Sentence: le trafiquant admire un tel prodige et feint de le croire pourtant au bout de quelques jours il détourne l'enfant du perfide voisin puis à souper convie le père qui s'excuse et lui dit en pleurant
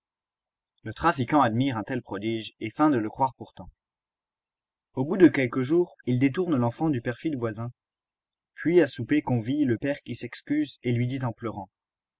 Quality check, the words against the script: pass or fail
pass